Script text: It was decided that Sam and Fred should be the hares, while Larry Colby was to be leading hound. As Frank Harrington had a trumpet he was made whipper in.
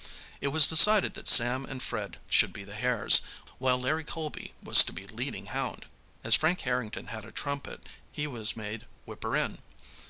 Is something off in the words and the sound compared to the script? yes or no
no